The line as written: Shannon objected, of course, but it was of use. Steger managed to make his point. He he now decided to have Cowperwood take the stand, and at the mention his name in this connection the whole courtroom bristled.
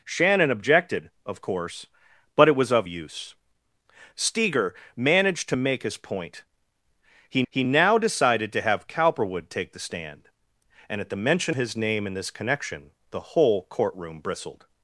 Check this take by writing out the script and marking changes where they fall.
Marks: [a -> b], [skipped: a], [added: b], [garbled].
Shannon objected, of course, but it was of use. Steger managed to make his point. He he now decided to have Cowperwood take the stand, and at the mention his name in this connection the whole courtroom bristled.